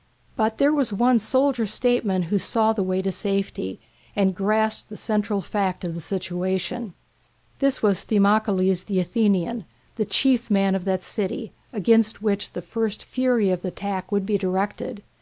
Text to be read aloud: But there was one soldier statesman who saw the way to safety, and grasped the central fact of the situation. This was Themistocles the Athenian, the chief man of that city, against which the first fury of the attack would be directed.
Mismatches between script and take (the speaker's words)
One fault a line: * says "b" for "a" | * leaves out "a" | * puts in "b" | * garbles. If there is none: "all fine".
all fine